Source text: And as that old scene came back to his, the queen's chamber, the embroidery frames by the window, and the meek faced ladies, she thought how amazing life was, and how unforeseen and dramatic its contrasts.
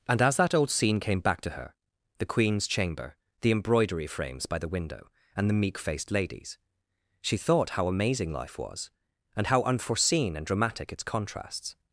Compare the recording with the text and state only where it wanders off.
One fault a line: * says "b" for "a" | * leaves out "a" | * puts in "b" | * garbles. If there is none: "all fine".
* says "her" for "his"